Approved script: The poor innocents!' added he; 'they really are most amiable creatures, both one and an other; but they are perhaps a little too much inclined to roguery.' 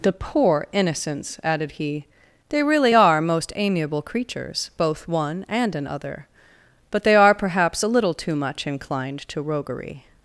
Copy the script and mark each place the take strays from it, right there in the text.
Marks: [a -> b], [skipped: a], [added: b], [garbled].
The poor innocents!' added he; 'they really are most amiable creatures, both one and an other; but they are perhaps a little too much inclined to roguery.'